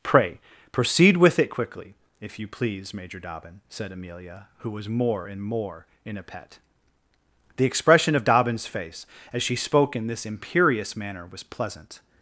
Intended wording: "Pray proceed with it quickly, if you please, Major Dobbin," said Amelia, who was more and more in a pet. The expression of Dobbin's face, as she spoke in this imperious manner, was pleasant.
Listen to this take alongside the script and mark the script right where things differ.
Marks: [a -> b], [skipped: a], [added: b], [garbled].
"Pray proceed with it quickly, if you please, Major Dobbin," said Amelia, who was more and more in a pet. The expression of Dobbin's face, as she spoke in this imperious manner, was pleasant.